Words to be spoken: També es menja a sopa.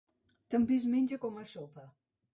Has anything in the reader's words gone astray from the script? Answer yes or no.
yes